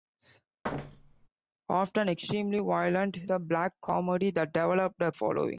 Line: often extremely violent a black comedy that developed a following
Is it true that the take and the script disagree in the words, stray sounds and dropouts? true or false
true